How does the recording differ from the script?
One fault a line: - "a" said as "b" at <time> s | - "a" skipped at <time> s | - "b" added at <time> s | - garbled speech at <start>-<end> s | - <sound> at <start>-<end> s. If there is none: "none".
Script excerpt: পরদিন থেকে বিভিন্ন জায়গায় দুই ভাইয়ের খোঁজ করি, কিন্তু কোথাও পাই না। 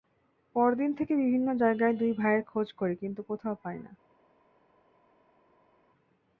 none